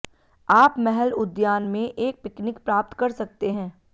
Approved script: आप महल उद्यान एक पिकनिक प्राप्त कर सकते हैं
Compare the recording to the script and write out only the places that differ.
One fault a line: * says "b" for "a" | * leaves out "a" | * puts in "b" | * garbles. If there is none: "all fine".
* puts in "में"